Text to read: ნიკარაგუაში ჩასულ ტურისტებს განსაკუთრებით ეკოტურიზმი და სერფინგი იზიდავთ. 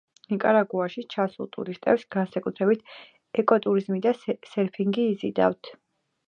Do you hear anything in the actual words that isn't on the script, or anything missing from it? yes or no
no